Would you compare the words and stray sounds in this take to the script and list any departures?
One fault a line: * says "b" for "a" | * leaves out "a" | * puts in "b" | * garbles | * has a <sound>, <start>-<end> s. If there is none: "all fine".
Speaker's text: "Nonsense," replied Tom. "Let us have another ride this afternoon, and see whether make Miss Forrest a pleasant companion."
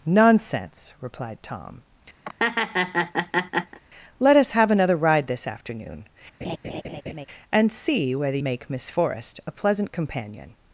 * has a laugh, 2.2-3.8 s
* has a laugh, 6.4-7.3 s